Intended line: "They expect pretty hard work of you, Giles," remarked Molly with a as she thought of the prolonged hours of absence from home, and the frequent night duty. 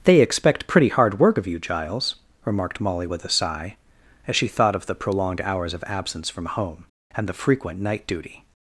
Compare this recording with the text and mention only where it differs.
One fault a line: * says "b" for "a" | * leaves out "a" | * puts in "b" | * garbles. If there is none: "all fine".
* puts in "sigh"